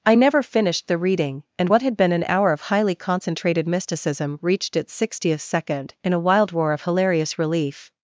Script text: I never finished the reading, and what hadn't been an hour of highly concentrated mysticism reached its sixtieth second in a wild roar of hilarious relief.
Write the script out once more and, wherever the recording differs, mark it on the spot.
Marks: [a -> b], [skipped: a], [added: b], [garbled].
I never finished the reading, and what [hadn't -> had] been an hour of highly concentrated mysticism reached its sixtieth second in a wild roar of hilarious relief.